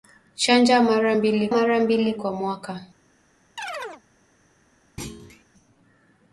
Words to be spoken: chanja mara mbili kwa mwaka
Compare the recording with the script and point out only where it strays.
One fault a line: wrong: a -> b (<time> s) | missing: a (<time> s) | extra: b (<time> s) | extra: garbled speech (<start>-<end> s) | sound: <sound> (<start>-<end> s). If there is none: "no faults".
extra: mara mbili (1.5 s)
sound: chirp (3.6-4.0 s)
sound: thud (5.0-5.4 s)